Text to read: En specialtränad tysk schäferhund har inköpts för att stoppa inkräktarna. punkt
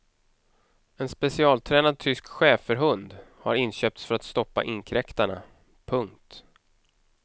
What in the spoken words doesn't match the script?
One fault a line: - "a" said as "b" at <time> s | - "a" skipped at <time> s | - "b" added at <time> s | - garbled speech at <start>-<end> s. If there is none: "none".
none